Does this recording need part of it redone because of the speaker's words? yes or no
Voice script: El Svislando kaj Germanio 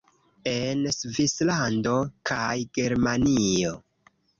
yes